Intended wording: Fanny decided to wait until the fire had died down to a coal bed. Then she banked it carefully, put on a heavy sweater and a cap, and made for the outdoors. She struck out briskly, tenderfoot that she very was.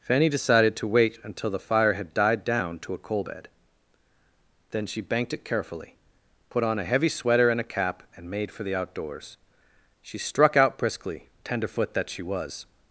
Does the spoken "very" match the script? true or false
false